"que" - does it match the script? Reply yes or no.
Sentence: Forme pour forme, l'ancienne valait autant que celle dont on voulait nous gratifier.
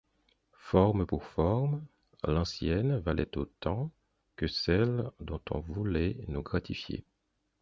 yes